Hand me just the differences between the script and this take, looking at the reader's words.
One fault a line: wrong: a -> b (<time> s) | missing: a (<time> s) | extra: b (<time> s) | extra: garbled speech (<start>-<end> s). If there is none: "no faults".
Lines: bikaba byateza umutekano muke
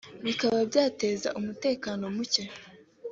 no faults